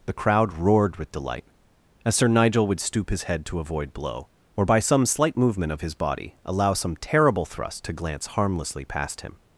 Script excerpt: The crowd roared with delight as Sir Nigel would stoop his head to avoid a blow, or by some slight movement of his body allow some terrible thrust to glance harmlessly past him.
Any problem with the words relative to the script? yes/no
yes